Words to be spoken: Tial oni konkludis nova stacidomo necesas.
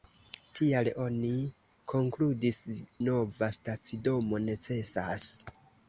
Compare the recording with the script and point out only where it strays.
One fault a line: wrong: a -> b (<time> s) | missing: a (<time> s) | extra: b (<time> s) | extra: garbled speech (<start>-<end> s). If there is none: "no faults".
no faults